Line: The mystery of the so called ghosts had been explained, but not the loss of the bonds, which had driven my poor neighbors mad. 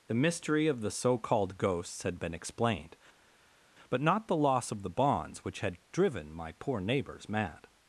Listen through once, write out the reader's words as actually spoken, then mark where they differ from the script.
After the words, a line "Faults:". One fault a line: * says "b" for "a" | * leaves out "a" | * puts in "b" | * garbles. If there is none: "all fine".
The mystery of the so called ghosts had been explained, but not the loss of the bonds, which had driven my poor neighbors mad.
Faults:
all fine